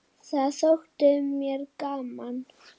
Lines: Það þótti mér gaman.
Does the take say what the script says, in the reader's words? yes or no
yes